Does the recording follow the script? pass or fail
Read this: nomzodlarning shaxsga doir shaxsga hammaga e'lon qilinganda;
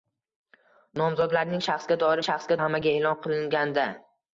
pass